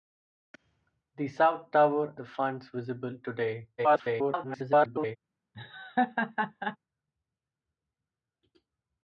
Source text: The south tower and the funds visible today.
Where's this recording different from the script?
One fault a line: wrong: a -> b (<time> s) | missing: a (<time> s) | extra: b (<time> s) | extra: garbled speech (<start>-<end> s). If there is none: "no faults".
missing: and (2.1 s)
extra: garbled speech (3.8-5.2 s)